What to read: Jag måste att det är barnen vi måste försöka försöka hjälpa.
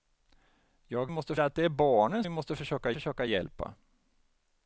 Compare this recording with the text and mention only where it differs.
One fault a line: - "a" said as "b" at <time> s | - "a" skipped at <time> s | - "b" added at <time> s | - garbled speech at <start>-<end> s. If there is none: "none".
none